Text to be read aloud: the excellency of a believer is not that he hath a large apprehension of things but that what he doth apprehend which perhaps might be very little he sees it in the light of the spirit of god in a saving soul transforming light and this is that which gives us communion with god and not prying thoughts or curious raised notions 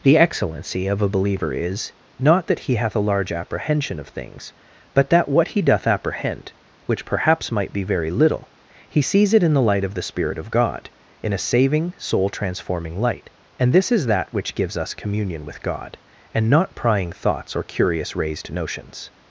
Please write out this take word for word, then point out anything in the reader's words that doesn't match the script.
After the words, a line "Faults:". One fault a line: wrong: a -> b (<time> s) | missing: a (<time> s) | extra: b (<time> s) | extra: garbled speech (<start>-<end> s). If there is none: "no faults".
the excellency of a believer is not that he hath a large apprehension of things but that what he doth apprehend which perhaps might be very little he sees it in the light of the spirit of god in a saving soul transforming light and this is that which gives us communion with god and not prying thoughts or curious raised notions
Faults:
no faults